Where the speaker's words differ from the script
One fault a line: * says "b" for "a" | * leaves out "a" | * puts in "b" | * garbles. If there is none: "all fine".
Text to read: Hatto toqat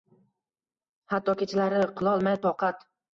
* puts in "kechalari qilolmay"